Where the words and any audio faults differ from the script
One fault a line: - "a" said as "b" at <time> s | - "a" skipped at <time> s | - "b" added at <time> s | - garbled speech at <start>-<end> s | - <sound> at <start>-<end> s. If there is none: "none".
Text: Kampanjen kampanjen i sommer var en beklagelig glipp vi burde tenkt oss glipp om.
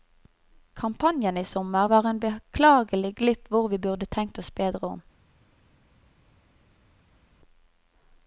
- "kampanjen" skipped at 1.4 s
- "hvor" added at 3.5 s
- "glipp" said as "bedre" at 4.5 s